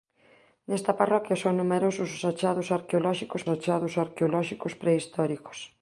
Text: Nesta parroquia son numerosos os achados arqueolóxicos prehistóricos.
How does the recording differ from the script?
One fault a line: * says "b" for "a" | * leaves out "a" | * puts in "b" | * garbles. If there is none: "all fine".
* puts in "achados arqueolóxicos"